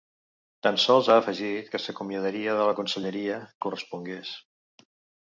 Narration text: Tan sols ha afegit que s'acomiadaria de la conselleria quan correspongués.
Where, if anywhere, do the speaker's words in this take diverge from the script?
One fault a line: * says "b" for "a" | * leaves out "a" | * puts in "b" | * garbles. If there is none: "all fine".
* leaves out "quan"